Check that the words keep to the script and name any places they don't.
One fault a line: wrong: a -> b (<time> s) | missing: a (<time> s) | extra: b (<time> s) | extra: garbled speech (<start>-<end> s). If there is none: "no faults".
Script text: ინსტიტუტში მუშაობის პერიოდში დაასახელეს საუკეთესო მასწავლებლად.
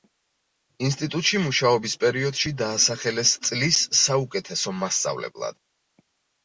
extra: წლის (3.5 s)